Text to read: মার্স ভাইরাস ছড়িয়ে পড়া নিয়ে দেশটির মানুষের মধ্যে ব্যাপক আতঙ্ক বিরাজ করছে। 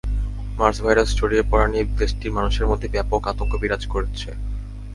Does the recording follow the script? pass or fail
pass